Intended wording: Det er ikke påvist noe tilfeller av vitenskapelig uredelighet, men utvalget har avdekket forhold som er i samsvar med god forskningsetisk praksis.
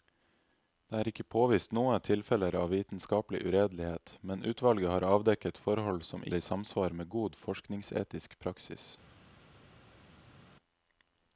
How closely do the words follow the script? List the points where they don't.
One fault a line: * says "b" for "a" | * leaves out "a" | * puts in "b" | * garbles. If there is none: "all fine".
all fine